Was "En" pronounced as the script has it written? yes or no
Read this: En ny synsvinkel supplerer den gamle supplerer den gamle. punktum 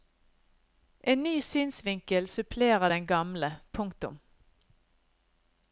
yes